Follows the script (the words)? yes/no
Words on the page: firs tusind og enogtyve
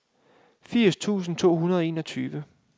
no